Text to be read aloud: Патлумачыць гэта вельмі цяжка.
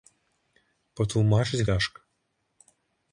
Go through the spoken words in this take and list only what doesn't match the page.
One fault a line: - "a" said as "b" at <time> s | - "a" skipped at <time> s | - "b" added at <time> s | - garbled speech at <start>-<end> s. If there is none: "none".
- "гэта вельмі" skipped at 1.6 s